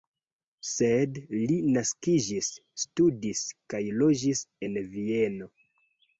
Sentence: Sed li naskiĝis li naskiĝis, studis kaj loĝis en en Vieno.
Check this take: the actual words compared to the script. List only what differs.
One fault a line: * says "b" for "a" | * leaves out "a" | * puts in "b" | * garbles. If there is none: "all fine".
* leaves out "li naskiĝis"
* leaves out "en"